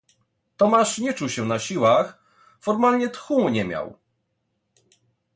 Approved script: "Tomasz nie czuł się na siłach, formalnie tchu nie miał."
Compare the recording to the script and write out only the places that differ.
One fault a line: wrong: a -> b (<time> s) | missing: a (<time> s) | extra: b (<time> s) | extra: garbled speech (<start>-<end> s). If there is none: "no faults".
no faults